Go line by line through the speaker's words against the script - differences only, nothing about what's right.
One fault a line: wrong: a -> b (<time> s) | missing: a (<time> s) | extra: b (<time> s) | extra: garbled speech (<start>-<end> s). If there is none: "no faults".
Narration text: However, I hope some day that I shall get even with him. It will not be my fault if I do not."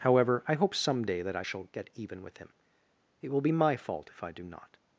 missing: not (3.4 s)